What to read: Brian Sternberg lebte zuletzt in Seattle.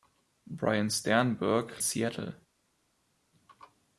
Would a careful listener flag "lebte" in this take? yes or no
yes